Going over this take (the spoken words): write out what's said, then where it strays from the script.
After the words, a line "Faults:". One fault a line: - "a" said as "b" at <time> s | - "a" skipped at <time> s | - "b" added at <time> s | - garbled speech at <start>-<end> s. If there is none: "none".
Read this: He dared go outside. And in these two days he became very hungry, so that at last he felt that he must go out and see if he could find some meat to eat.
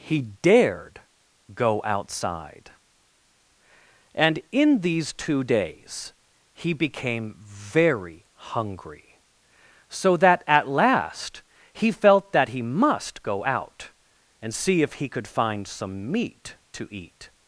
He dared go outside. And in these two days he became very hungry, so that at last he felt that he must go out and see if he could find some meat to eat.
Faults:
none